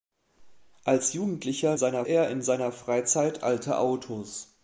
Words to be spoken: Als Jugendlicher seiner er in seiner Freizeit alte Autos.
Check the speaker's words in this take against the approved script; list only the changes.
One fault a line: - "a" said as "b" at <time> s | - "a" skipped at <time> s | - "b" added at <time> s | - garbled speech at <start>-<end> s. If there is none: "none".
none